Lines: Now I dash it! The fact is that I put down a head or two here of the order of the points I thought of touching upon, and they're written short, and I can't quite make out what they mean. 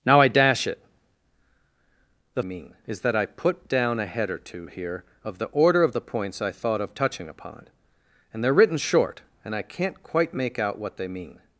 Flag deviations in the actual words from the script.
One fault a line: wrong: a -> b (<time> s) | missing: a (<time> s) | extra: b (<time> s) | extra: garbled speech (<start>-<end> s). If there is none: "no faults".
wrong: fact -> mean (2.4 s)